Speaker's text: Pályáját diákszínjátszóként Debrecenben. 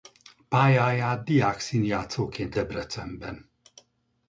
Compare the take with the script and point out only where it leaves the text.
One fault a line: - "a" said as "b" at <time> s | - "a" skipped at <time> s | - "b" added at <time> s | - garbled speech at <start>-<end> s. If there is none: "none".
none